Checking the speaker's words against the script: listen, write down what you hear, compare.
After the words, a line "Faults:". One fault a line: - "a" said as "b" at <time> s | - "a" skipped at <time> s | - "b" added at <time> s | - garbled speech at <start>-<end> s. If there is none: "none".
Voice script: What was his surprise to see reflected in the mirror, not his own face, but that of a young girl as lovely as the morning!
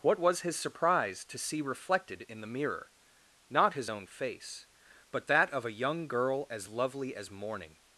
What was his surprise to see reflected in the mirror, not his own face, but that of a young girl as lovely as morning!
Faults:
- "the" skipped at 7.3 s